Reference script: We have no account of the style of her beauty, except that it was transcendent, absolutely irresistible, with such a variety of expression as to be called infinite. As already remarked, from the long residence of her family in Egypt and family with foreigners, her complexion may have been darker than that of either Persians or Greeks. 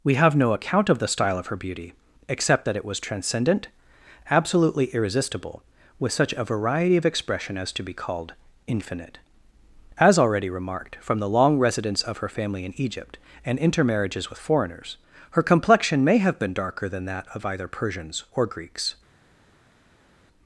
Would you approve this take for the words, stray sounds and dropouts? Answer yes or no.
no